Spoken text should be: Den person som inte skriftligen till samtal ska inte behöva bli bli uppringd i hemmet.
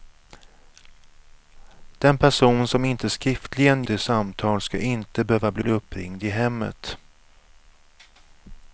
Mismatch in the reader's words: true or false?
false